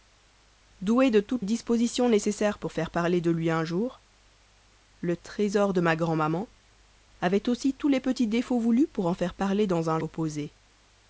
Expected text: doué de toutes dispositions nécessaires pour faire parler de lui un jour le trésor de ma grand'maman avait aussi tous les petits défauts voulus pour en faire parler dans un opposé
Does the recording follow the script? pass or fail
pass